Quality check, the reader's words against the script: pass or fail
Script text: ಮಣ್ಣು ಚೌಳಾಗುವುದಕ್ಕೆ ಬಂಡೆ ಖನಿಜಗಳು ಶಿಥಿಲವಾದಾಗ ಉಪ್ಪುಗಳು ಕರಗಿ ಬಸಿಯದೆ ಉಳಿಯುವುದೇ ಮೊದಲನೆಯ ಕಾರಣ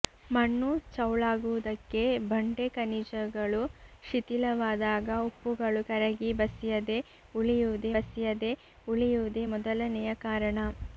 fail